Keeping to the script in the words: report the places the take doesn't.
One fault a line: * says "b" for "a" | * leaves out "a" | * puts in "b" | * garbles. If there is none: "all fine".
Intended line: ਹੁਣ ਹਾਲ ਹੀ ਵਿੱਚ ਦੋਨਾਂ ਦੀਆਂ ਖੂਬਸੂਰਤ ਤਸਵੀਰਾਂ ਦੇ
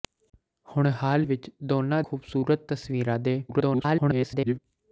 * leaves out "ਹੀ"
* leaves out "ਦੀਆਂ"
* garbles